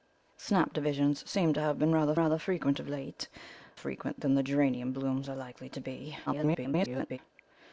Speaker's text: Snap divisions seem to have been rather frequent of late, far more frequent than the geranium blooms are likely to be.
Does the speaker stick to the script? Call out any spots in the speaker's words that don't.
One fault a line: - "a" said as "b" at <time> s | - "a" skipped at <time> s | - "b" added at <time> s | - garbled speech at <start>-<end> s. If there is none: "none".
- "rather" added at 2.2 s
- "far more" skipped at 3.3 s
- garbled speech at 6.3-7.2 s